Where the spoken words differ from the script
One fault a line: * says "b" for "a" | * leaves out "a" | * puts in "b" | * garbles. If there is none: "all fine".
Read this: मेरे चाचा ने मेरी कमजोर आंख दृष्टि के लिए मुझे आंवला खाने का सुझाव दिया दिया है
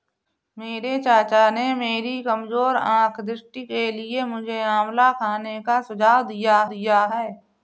all fine